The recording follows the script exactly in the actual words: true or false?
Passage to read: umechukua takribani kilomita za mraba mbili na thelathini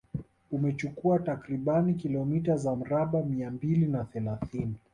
false